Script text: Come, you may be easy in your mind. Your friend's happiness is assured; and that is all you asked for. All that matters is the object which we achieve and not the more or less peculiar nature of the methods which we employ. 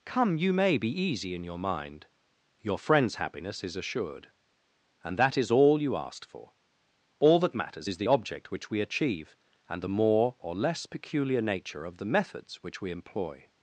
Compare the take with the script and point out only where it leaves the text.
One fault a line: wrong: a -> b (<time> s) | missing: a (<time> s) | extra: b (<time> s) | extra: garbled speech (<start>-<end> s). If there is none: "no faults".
missing: not (9.8 s)